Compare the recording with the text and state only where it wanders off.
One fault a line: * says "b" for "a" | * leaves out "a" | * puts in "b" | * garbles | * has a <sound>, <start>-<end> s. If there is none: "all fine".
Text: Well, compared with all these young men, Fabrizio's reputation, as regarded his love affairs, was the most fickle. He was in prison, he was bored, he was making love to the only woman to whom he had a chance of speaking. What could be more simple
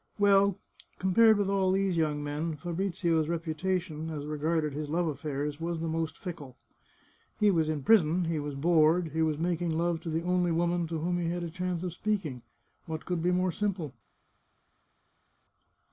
all fine